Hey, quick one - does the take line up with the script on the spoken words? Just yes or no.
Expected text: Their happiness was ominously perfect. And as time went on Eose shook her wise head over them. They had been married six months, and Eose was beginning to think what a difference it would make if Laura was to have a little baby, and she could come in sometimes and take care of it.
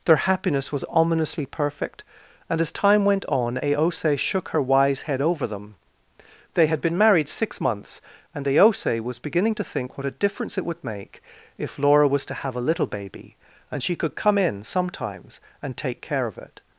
yes